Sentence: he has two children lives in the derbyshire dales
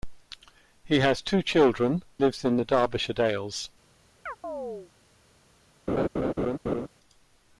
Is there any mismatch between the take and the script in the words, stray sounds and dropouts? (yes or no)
yes